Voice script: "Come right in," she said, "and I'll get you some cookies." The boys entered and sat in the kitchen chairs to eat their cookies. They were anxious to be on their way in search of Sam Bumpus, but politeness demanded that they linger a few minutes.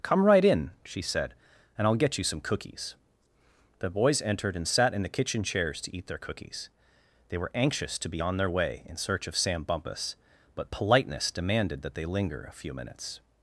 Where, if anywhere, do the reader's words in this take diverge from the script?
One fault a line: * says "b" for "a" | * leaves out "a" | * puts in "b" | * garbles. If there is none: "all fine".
all fine